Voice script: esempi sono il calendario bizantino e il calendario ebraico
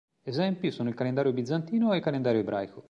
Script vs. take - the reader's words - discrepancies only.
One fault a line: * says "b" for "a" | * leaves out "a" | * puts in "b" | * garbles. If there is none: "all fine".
all fine